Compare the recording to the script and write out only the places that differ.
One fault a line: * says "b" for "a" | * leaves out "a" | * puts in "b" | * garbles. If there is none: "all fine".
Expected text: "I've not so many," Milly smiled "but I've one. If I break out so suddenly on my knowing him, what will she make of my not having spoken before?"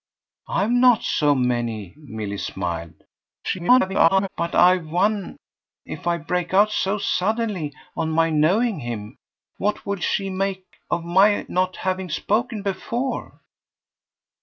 * garbles